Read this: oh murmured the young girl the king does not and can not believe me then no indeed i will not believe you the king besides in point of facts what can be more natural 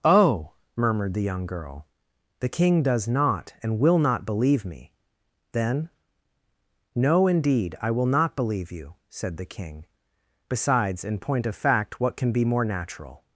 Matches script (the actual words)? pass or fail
fail